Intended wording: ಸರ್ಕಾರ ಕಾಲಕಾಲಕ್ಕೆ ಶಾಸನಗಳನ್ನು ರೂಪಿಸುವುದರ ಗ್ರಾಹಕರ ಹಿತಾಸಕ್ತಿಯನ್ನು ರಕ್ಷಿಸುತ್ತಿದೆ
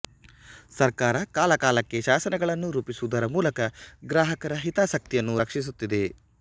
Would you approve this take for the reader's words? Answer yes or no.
no